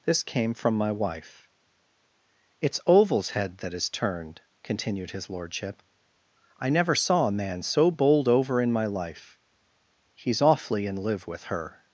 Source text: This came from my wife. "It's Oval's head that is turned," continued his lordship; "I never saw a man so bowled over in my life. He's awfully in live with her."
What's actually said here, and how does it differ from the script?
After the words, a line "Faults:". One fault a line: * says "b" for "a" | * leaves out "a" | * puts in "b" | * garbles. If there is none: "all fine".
This came from my wife. "It's Oval's head that is turned," continued his lordship; "I never saw a man so bowled over in my life. He's awfully in live with her."
Faults:
all fine